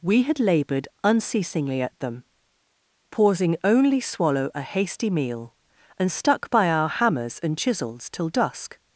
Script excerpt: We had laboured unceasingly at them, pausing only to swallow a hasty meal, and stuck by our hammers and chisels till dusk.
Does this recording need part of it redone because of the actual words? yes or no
yes